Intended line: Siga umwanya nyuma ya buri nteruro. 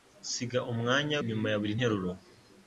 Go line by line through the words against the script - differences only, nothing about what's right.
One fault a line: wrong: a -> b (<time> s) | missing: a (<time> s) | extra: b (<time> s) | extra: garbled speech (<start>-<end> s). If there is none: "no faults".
no faults